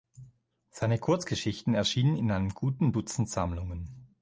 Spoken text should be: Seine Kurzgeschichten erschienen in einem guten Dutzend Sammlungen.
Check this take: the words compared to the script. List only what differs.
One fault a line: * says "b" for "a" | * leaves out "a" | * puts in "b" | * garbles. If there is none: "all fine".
all fine